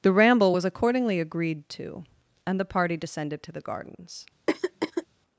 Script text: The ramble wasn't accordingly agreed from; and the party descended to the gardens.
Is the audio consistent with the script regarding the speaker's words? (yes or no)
no